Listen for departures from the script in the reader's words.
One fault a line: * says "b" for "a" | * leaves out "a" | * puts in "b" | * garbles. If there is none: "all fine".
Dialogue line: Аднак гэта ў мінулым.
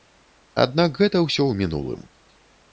* puts in "ўсё"